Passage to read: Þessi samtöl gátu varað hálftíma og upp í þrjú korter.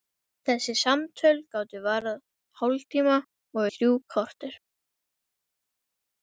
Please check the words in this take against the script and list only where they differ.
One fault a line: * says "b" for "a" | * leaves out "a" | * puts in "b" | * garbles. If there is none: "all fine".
* leaves out "upp"